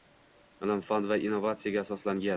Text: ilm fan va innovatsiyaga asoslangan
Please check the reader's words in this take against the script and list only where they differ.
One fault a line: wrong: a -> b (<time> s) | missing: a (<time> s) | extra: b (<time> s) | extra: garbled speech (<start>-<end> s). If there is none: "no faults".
no faults